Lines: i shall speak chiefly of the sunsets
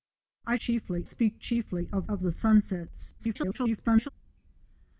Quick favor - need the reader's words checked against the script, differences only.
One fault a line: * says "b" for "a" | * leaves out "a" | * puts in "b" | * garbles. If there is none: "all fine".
* says "chiefly" for "shall"
* puts in "of"
* garbles